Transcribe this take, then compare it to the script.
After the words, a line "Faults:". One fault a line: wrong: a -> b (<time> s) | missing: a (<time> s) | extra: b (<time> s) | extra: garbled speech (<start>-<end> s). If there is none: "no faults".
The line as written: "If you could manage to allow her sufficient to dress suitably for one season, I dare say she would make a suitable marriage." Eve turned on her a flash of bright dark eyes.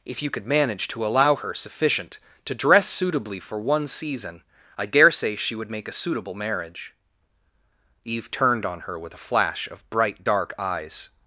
"If you could manage to allow her sufficient to dress suitably for one season, I dare say she would make a suitable marriage." Eve turned on her with a flash of bright dark eyes.
Faults:
extra: with (9.0 s)